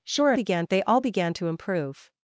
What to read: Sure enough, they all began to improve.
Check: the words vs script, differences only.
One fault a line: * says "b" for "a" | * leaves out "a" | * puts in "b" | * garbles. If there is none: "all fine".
* says "began" for "enough"